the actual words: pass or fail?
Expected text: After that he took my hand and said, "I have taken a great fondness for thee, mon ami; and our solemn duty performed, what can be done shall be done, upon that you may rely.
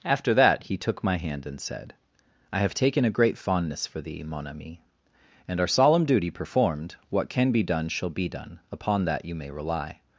pass